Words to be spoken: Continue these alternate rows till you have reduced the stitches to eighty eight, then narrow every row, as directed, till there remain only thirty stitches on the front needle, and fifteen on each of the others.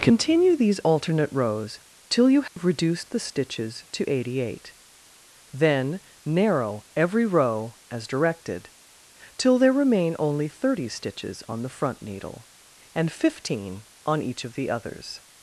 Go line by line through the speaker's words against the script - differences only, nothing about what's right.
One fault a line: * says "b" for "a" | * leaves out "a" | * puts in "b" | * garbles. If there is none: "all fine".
all fine